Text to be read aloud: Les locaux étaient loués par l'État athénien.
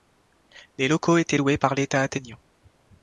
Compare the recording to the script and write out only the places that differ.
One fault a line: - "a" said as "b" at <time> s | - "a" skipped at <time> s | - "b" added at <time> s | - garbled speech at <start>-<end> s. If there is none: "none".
none